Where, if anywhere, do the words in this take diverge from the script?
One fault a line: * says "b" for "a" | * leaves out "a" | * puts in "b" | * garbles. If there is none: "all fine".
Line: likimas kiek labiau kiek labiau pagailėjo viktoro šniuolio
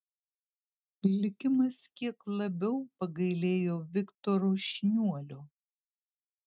* leaves out "kiek labiau"